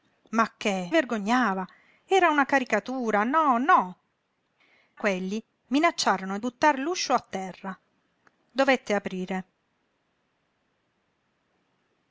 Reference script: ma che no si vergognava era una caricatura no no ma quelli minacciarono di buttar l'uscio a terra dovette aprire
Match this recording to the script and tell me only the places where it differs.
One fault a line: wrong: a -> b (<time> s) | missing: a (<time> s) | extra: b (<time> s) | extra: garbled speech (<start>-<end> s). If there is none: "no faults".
missing: no si (0.9 s)
missing: ma (4.0 s)
missing: di (6.4 s)